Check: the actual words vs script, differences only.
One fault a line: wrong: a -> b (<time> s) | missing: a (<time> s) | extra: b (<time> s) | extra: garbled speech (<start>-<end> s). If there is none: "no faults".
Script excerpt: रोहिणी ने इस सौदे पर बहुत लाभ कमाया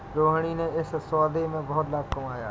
wrong: पर -> में (1.5 s)